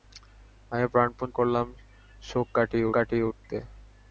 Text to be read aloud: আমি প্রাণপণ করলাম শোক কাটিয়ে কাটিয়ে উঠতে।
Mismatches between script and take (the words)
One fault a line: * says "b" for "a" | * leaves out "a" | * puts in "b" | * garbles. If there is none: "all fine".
all fine